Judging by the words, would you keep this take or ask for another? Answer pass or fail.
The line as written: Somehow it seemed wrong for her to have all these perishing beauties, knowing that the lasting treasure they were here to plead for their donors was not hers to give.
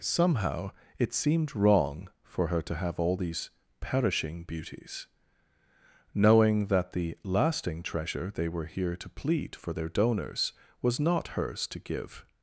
pass